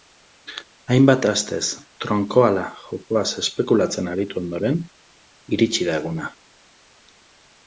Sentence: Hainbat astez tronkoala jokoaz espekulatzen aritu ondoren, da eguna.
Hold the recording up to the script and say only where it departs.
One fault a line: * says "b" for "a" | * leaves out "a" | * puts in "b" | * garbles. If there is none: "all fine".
* puts in "iritsi"